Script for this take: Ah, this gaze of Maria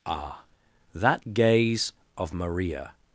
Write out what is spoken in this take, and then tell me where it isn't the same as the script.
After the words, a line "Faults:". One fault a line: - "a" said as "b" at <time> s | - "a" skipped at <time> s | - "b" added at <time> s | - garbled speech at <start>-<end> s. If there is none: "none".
Ah, that gaze of Maria
Faults:
- "this" said as "that" at 0.9 s